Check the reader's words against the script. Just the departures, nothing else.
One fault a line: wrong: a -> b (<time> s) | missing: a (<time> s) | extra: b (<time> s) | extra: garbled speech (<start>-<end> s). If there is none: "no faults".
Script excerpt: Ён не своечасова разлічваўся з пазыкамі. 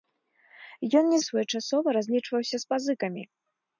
no faults